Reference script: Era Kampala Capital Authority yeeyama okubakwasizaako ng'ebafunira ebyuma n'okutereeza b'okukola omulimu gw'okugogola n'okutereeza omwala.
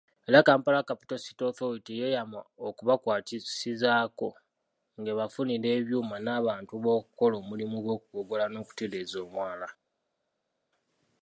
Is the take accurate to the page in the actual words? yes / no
no